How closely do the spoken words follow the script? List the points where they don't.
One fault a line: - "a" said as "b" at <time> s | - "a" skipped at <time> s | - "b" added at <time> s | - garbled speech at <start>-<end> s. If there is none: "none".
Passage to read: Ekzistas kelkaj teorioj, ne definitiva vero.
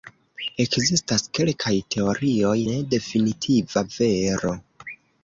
none